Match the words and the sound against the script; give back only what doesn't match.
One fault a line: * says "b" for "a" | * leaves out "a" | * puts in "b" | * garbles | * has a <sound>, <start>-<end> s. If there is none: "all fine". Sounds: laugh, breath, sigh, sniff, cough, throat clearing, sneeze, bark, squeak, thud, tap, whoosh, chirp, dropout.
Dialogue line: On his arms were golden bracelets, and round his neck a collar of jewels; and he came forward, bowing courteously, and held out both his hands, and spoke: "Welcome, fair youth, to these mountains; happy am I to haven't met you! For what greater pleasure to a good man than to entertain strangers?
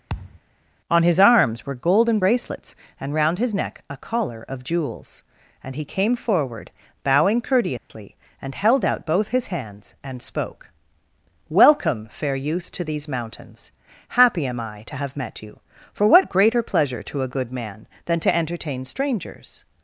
* has a thud, 0.1-0.4 s
* has a dropout, 7.8-7.9 s
* says "have" for "haven't"